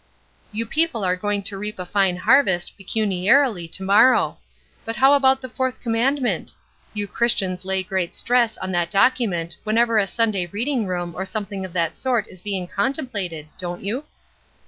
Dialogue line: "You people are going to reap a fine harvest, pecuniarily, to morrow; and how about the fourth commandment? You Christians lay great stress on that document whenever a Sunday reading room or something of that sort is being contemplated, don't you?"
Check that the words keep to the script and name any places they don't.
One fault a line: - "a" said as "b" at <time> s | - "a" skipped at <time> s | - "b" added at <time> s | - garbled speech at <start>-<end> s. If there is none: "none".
- "and" said as "but" at 4.8 s